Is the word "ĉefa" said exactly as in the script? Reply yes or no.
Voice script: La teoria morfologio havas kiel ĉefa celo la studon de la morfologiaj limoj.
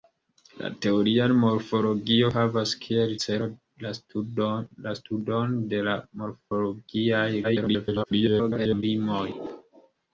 no